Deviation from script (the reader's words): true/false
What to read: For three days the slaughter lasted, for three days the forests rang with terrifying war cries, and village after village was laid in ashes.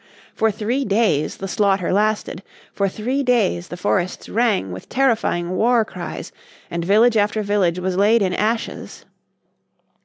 false